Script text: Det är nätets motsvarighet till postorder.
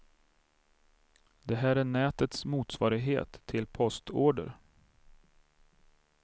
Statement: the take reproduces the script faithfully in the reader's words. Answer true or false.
false